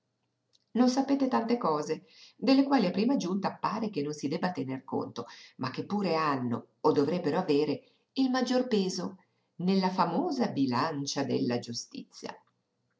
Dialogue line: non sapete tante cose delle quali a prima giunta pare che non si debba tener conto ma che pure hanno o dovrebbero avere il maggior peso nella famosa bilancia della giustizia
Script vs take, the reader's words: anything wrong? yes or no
no